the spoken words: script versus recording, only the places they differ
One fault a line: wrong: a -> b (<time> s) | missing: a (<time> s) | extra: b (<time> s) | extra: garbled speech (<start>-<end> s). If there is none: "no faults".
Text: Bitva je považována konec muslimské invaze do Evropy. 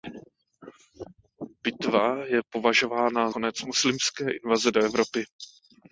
no faults